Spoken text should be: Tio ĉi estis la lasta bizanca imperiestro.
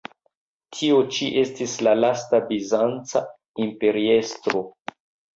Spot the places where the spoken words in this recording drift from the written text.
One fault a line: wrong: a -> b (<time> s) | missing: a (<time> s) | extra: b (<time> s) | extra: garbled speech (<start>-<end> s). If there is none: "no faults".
no faults